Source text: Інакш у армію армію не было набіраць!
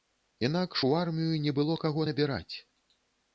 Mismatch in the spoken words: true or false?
true